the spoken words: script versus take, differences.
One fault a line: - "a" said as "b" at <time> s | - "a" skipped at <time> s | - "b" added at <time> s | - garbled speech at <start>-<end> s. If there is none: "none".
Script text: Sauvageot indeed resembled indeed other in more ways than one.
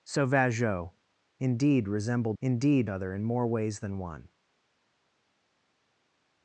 none